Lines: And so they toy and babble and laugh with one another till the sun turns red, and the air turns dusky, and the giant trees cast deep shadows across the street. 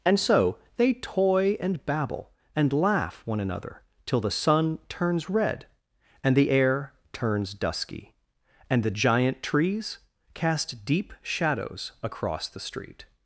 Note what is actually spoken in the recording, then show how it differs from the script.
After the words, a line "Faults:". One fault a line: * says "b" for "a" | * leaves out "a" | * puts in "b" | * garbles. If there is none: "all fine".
And so they toy and babble and laugh one another till the sun turns red, and the air turns dusky, and the giant trees cast deep shadows across the street.
Faults:
* leaves out "with"